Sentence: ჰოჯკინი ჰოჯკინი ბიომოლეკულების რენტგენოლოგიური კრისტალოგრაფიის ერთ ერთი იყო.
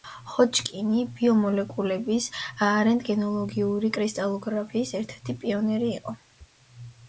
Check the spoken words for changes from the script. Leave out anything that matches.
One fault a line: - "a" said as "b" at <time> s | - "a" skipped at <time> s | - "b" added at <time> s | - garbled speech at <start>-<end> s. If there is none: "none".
- "ჰოჯკინი" skipped at 1.0 s
- "პიონერი" added at 5.4 s